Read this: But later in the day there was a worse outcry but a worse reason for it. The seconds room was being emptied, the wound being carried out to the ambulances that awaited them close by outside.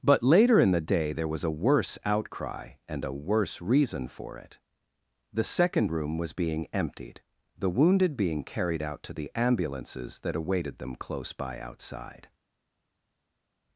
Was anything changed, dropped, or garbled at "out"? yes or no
no